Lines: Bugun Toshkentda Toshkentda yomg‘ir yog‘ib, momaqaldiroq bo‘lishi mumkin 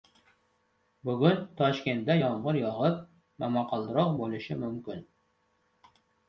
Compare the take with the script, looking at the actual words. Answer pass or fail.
fail